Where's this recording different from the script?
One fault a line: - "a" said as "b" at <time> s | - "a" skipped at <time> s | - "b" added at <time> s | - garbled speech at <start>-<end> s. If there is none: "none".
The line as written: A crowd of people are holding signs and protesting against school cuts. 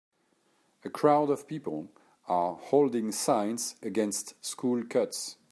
- "and protesting" skipped at 3.8 s